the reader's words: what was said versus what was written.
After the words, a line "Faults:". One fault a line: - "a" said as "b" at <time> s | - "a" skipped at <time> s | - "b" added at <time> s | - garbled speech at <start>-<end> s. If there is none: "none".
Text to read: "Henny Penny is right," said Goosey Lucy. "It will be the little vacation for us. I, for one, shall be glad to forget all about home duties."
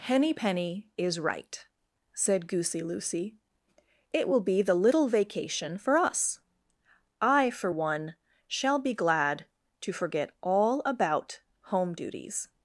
"Henny Penny is right," said Goosey Lucy. "It will be the little vacation for us. I, for one, shall be glad to forget all about home duties."
Faults:
none